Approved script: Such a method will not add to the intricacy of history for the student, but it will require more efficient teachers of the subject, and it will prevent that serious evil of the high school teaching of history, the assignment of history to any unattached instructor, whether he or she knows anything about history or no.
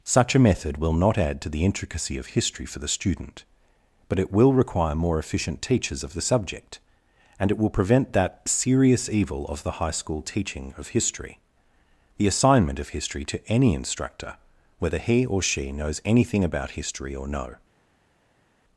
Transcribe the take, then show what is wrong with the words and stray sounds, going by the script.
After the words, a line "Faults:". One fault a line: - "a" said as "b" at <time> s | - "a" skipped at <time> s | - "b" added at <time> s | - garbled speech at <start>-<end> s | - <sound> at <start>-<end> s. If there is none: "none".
Such a method will not add to the intricacy of history for the student, but it will require more efficient teachers of the subject, and it will prevent that serious evil of the high school teaching of history, the assignment of history to any instructor, whether he or she knows anything about history or no.
Faults:
- "unattached" skipped at 13.7 s